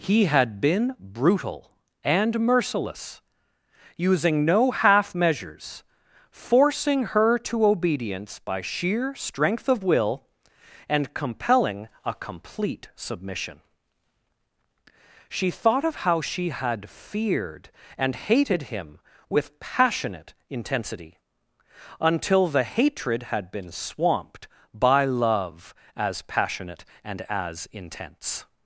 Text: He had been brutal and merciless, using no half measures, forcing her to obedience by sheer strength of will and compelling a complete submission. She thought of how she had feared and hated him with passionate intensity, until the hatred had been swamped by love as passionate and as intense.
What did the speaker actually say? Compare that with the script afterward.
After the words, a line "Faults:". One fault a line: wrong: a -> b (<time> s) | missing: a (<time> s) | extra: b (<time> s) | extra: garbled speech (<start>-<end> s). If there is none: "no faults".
He had been brutal and merciless, using no half measures, forcing her to obedience by sheer strength of will and compelling a complete submission. She thought of how she had feared and hated him with passionate intensity, until the hatred had been swamped by love as passionate and as intense.
Faults:
no faults